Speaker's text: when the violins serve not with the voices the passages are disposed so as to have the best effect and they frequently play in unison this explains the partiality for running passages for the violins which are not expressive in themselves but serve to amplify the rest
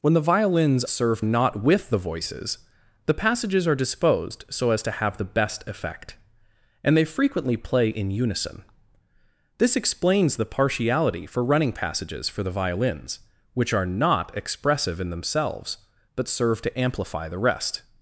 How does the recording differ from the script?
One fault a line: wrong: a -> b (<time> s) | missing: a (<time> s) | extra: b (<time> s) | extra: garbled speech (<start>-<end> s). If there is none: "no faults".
no faults